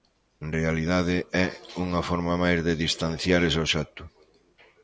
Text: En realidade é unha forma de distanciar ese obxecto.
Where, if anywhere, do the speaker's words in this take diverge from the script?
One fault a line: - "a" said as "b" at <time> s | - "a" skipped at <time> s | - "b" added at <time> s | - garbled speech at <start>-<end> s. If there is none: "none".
- "máis" added at 2.4 s